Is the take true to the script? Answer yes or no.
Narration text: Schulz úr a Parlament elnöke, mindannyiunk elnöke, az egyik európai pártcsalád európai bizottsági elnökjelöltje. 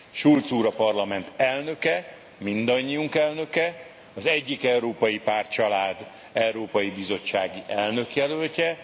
yes